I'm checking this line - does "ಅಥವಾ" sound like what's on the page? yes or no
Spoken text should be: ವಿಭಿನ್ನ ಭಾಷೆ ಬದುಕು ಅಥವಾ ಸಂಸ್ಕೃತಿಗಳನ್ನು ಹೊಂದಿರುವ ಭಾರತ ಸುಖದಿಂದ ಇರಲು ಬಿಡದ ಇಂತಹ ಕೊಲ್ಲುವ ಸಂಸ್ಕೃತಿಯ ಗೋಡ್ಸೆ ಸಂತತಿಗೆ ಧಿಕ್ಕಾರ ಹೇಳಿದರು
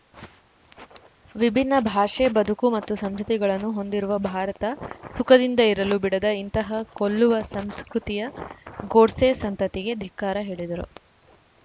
no